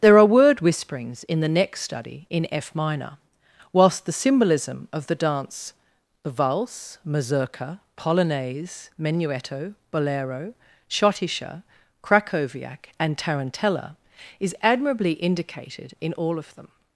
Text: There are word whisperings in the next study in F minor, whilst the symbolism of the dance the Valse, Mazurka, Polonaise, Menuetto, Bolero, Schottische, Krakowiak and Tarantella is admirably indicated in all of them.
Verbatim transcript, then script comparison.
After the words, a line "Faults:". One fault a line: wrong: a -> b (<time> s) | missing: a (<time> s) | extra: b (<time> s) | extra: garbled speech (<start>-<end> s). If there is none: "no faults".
There are word whisperings in the next study in F minor, whilst the symbolism of the dance the Valse, Mazurka, Polonaise, Menuetto, Bolero, Schottische, Krakowiak and Tarantella is admirably indicated in all of them.
Faults:
no faults